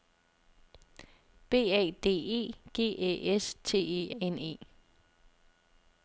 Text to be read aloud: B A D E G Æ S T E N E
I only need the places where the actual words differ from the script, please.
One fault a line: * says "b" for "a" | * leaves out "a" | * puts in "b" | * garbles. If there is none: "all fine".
all fine